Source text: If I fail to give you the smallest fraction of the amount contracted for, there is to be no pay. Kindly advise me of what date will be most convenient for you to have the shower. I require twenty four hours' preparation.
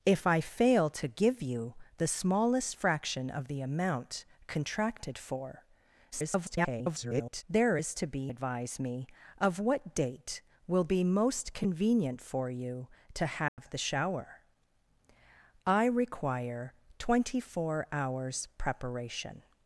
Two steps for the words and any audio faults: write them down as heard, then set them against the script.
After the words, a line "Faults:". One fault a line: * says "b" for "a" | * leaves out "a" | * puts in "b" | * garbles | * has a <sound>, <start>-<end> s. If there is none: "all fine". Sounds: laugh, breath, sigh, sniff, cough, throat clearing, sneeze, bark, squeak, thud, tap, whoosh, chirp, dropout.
If I fail to give you the smallest fraction of the amount contracted for, [garbled] there is to be advise me of what date will be most convenient for you to have the shower. I require twenty four hours' preparation.
Faults:
* garbles
* leaves out "no pay Kindly"
* has a dropout, 13.5-13.6 s